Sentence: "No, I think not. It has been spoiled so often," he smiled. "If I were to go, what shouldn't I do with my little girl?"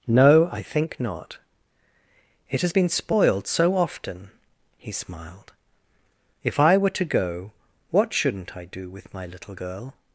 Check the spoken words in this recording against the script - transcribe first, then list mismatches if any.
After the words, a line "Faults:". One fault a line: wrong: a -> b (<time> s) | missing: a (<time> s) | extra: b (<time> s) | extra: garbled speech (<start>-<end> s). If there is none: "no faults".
"No, I think not. It has been spoiled so often," he smiled. "If I were to go, what shouldn't I do with my little girl?"
Faults:
no faults